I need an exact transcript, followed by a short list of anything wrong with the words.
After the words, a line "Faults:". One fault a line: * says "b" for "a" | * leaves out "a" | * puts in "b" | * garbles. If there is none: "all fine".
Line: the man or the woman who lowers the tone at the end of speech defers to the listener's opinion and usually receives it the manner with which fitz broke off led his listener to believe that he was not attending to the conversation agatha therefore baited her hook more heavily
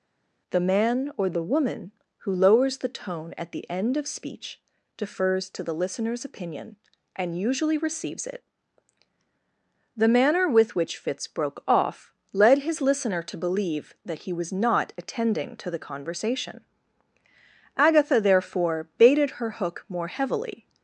the man or the woman who lowers the tone at the end of speech defers to the listener's opinion and usually receives it the manner with which fitz broke off led his listener to believe that he was not attending to the conversation agatha therefore baited her hook more heavily
Faults:
all fine